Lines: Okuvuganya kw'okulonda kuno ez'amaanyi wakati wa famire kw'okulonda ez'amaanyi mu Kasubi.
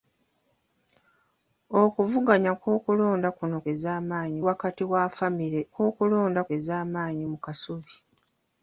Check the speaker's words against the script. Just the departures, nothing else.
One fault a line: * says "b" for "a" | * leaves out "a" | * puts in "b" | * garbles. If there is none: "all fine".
all fine